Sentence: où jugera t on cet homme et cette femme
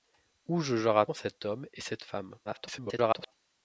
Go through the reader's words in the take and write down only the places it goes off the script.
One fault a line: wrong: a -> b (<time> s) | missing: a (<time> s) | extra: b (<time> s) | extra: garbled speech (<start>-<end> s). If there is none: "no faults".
missing: t (1.1 s)
extra: garbled speech (2.4-3.3 s)